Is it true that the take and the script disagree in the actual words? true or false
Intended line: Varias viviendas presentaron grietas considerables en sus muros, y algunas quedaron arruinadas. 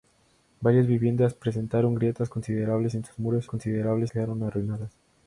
true